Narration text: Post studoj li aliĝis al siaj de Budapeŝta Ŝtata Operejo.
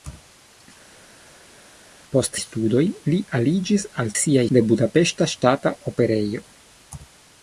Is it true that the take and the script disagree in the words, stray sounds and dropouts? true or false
false